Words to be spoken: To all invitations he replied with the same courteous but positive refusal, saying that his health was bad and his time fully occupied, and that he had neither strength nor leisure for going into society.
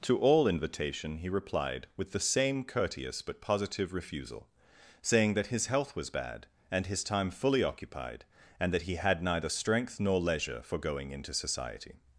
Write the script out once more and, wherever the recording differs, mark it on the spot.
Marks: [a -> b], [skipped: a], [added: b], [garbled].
To all [invitations -> invitation] he replied with the same courteous but positive refusal, saying that his health was bad and his time fully occupied, and that he had neither strength nor leisure for going into society.